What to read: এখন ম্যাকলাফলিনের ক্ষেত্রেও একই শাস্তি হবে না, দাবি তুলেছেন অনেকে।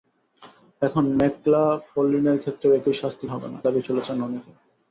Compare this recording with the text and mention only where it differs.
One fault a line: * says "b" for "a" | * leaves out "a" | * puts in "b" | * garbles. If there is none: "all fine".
all fine